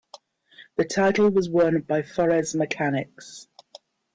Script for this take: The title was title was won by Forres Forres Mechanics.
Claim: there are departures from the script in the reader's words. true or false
true